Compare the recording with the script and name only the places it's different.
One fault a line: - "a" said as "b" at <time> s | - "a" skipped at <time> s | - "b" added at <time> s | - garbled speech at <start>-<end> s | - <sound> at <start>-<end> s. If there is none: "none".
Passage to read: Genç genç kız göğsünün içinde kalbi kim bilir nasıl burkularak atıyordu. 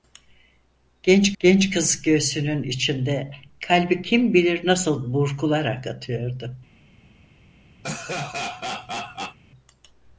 - laugh at 7.8-9.4 s